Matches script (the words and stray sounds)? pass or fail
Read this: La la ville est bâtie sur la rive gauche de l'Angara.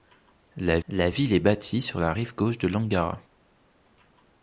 pass